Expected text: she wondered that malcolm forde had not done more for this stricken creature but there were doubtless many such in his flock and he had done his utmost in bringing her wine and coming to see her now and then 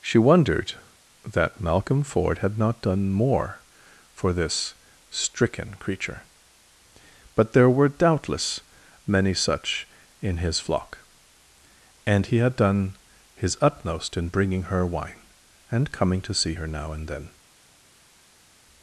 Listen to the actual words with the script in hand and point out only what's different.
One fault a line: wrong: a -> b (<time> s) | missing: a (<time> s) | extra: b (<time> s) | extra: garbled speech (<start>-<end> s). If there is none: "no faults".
no faults